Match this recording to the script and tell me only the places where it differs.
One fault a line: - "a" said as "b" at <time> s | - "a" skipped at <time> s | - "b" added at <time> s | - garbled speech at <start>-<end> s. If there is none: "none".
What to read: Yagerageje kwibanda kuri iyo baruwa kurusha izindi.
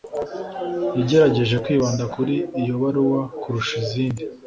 none